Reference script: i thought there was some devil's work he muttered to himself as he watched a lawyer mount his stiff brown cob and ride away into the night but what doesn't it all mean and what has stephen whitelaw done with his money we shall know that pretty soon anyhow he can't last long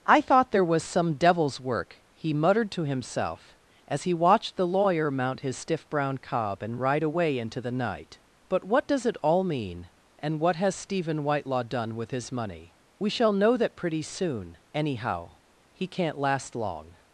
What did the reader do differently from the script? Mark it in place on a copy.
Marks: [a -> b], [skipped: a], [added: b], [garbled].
i thought there was some devil's work he muttered to himself as he watched [a -> the] lawyer mount his stiff brown cob and ride away into the night but what [doesn't -> does] it all mean and what has stephen whitelaw done with his money we shall know that pretty soon anyhow he can't last long